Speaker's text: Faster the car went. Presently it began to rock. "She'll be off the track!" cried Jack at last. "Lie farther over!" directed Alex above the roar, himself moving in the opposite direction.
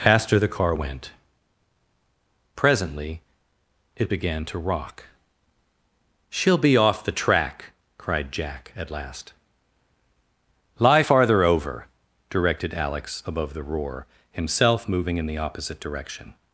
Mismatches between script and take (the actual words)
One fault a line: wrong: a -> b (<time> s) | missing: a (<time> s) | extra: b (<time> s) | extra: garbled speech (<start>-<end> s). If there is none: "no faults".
no faults